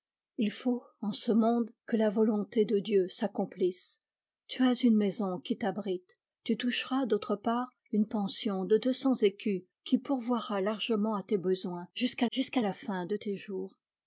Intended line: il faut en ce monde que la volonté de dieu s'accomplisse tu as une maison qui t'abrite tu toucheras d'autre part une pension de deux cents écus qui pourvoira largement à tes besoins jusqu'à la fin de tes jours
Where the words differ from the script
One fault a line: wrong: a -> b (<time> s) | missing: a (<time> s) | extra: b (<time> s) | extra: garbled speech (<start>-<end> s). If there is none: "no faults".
extra: jusqu'à (12.3 s)